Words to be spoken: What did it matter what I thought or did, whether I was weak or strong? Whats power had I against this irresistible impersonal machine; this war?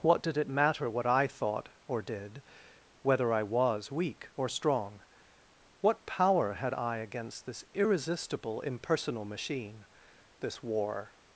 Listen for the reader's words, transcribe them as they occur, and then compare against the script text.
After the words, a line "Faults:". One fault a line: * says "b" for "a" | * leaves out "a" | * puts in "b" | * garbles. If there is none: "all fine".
What did it matter what I thought or did, whether I was weak or strong? What power had I against this irresistible impersonal machine; this war?
Faults:
* says "What" for "Whats"